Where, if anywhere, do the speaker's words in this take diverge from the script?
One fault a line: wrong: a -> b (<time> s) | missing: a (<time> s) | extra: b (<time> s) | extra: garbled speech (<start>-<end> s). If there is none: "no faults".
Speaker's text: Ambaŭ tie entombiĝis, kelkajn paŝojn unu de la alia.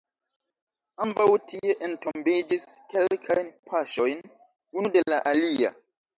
no faults